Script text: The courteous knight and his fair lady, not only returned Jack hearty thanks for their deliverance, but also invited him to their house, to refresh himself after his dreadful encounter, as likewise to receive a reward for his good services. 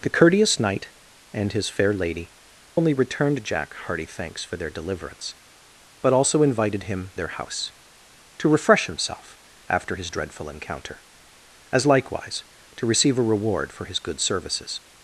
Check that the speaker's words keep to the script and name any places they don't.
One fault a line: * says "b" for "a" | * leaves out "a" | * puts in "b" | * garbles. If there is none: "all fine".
* leaves out "not"
* leaves out "to"